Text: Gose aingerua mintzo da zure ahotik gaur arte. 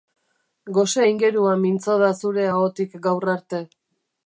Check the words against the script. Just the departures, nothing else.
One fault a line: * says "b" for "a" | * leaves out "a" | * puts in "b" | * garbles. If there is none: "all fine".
all fine